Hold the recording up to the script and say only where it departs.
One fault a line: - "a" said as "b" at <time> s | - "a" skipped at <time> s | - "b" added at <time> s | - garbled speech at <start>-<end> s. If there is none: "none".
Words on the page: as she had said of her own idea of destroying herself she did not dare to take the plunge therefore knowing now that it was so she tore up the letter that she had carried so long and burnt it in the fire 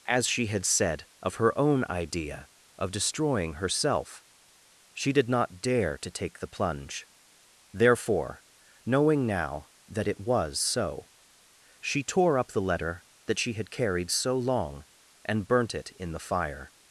none